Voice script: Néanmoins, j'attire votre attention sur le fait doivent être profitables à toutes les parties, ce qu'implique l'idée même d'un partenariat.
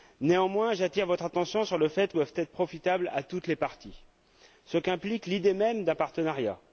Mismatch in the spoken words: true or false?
false